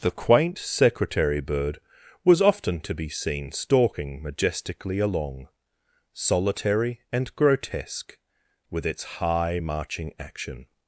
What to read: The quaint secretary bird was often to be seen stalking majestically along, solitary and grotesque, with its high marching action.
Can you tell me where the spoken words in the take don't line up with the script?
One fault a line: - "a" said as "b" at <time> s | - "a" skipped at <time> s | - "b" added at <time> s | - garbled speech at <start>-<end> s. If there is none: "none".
none